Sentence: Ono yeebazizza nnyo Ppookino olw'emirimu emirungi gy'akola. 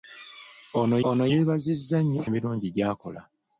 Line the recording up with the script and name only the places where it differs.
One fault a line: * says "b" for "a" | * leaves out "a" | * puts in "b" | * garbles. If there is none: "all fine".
* puts in "ono"
* leaves out "Ppookino olw'emirimu"